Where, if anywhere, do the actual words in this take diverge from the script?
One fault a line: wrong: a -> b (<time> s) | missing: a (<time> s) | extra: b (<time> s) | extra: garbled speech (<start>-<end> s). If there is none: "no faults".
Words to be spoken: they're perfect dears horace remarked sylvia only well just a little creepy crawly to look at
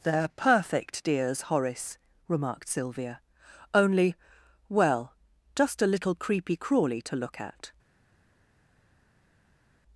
no faults